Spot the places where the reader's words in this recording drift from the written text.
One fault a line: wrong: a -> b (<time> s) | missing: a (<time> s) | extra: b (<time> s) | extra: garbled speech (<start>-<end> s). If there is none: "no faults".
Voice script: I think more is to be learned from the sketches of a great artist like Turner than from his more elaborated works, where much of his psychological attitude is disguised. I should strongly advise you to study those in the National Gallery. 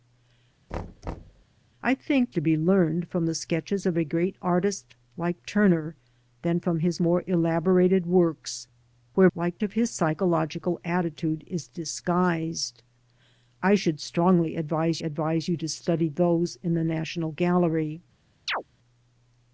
missing: more is (2.3 s)
wrong: much -> like (9.4 s)
extra: advise (15.0 s)